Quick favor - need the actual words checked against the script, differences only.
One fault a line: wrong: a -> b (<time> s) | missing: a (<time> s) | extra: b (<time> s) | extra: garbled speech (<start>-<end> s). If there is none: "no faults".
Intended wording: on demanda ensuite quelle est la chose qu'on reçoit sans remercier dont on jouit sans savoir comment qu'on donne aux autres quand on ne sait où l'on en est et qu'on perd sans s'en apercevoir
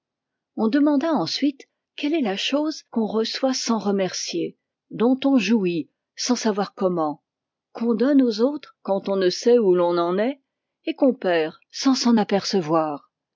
no faults